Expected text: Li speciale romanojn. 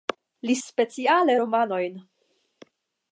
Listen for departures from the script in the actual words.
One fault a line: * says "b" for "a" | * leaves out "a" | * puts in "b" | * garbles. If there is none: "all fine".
all fine